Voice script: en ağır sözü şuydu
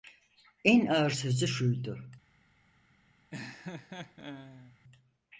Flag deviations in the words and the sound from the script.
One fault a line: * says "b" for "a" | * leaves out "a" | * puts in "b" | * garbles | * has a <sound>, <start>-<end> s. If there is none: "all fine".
* has a laugh, 3.3-4.8 s